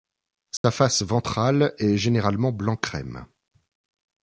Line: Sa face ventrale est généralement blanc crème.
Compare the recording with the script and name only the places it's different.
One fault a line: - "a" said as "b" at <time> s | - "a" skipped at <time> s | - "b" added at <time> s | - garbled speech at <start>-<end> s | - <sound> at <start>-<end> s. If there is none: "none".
- dropout at 0.6-0.6 s